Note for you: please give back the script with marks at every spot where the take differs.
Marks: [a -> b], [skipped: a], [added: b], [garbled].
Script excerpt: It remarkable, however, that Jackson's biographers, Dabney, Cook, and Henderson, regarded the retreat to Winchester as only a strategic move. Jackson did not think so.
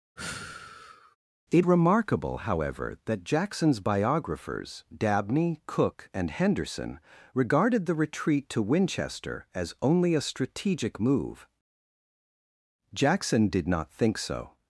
It remarkable, however, that Jackson's biographers, Dabney, Cook, and Henderson, regarded the retreat to Winchester as only a strategic move. Jackson did not think so.